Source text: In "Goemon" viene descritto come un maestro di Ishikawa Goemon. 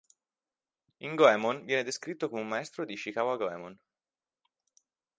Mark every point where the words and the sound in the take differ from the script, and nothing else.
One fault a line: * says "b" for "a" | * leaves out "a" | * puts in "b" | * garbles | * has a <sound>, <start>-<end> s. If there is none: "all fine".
all fine